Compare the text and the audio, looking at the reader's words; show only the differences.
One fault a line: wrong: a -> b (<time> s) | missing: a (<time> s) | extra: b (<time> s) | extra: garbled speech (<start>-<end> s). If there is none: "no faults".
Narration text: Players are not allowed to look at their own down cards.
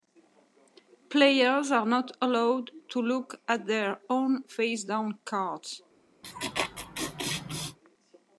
extra: face (4.5 s)